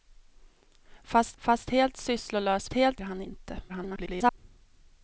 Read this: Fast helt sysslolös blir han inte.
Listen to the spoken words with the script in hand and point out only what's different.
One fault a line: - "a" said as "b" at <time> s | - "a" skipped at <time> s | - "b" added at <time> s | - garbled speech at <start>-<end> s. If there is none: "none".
- "fast" added at 1.4 s
- "blir" said as "helt" at 2.7 s
- garbled speech at 3.7-4.4 s